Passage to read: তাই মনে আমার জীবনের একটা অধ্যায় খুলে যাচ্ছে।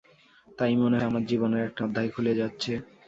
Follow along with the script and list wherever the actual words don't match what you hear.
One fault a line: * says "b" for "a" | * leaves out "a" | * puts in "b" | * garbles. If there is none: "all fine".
all fine